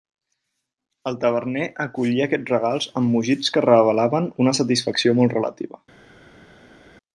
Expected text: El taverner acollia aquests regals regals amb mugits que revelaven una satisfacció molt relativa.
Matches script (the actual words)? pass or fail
fail